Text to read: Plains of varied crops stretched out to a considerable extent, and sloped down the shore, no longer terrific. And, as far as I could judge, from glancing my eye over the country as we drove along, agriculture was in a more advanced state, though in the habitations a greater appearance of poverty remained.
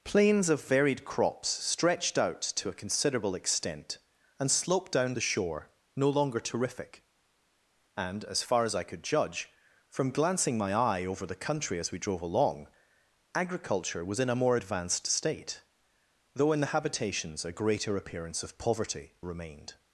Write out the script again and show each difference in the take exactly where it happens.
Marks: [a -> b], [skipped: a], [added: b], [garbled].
Plains of varied crops stretched out to a considerable extent, and sloped down the shore, no longer terrific. And, as far as I could judge, from glancing my eye over the country as we drove along, agriculture was in a more advanced state, though in the habitations a greater appearance of poverty remained.